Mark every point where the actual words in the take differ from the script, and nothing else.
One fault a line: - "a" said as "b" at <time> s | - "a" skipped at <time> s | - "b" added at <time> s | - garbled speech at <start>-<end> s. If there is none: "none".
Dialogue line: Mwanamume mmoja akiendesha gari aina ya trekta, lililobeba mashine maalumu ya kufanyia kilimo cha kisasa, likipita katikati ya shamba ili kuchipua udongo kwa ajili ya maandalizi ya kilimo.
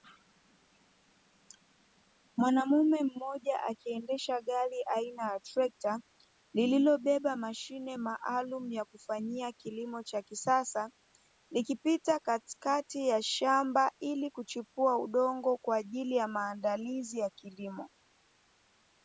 none